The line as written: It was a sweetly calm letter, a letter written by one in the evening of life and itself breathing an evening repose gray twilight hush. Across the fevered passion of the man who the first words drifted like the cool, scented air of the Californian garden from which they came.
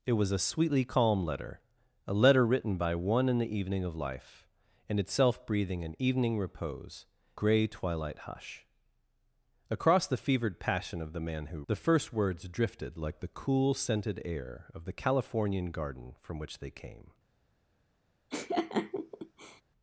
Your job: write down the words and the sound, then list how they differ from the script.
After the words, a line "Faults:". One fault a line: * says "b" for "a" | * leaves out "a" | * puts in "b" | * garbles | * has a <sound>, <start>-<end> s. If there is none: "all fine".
It was a sweetly calm letter, a letter written by one in the evening of life and itself breathing an evening repose gray twilight hush. Across the fevered passion of the man who the first words drifted like the cool, scented air of the Californian garden from which they came.
Faults:
* has a laugh, 18.3-19.6 s